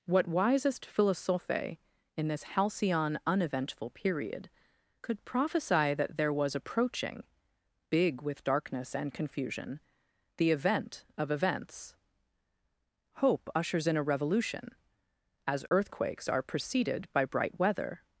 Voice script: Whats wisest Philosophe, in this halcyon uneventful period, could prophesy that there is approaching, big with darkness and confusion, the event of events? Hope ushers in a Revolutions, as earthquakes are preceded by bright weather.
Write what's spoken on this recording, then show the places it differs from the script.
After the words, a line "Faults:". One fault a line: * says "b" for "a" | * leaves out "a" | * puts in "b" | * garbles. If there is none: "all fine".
What wisest Philosophe, in this halcyon uneventful period, could prophesy that there was approaching, big with darkness and confusion, the event of events? Hope ushers in a Revolution, as earthquakes are preceded by bright weather.
Faults:
* says "What" for "Whats"
* says "was" for "is"
* says "Revolution" for "Revolutions"